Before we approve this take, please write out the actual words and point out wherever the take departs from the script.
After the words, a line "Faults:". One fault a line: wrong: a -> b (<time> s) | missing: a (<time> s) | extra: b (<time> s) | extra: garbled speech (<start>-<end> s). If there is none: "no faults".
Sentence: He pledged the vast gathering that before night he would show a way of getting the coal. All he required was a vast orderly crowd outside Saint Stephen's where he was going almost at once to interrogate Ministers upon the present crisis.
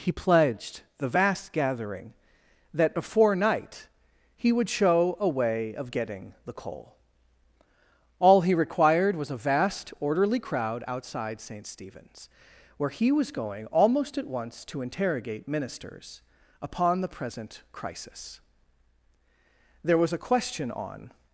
He pledged the vast gathering that before night he would show a way of getting the coal. All he required was a vast orderly crowd outside Saint Stephen's where he was going almost at once to interrogate Ministers upon the present crisis. There was a question on
Faults:
extra: There was a question on (19.8 s)